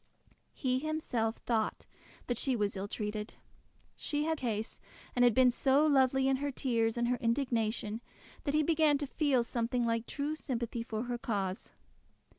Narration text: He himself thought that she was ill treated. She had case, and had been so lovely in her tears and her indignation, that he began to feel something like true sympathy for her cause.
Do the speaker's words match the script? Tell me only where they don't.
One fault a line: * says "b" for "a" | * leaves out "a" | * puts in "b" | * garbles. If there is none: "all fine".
all fine